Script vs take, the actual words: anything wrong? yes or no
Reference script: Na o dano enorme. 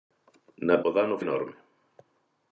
no